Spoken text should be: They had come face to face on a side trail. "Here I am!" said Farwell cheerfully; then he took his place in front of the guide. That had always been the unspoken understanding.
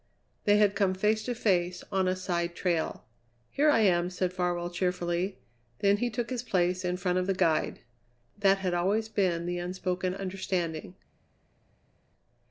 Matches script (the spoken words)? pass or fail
pass